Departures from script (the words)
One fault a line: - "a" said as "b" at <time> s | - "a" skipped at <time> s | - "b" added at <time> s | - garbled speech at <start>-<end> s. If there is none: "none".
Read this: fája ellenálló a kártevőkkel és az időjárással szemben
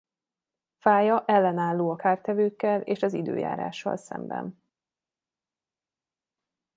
none